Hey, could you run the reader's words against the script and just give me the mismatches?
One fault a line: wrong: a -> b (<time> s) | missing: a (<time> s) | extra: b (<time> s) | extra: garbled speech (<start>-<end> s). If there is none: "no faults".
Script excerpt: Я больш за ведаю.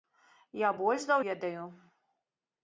no faults